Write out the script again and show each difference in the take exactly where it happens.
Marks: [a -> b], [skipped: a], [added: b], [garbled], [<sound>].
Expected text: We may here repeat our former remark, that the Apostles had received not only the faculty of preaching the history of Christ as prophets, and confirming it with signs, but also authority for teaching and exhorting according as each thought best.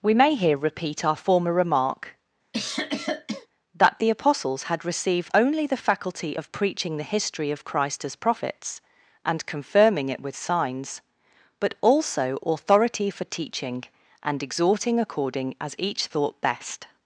We may here repeat our former remark, [cough] that the Apostles had received [skipped: not] only the faculty of preaching the history of Christ as prophets, and confirming it with signs, but also authority for teaching and exhorting according as each thought best.